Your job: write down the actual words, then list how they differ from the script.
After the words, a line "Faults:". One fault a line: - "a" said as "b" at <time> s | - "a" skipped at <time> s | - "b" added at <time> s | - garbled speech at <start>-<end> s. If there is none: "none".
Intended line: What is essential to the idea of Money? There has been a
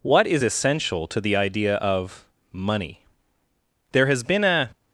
What is essential to the idea of Money? There has been a
Faults:
none